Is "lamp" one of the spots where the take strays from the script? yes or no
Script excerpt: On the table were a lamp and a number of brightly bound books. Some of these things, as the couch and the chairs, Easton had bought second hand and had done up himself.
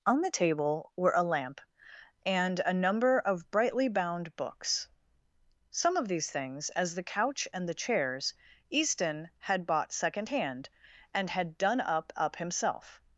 no